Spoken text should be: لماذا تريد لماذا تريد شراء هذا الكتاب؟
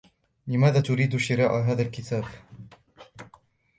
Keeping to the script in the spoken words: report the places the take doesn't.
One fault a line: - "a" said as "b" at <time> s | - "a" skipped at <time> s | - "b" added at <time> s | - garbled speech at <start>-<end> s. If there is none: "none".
- "لماذا تريد" skipped at 1.2 s